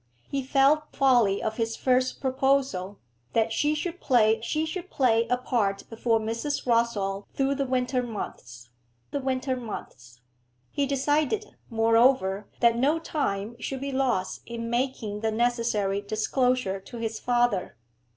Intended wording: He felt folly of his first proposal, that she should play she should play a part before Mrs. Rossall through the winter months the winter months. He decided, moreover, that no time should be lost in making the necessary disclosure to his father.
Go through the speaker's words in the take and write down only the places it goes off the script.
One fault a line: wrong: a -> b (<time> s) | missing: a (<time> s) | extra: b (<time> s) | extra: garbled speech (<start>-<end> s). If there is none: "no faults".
no faults